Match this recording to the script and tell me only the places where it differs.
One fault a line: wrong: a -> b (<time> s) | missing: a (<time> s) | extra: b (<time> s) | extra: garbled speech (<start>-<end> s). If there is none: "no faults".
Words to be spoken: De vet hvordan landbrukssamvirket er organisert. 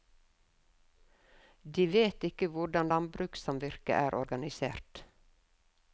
extra: ikke (2.3 s)